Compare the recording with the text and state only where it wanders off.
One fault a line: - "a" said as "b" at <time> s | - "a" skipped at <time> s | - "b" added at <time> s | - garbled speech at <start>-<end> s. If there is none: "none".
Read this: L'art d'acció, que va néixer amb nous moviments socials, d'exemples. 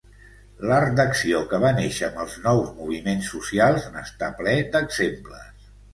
- "els" added at 2.2 s
- "n'està ple" added at 4.0 s